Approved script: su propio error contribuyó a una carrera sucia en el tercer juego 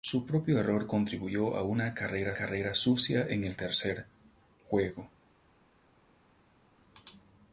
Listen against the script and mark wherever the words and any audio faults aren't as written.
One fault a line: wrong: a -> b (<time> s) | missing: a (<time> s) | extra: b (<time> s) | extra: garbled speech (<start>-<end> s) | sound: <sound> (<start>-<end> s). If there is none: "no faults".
extra: carrera (2.3 s)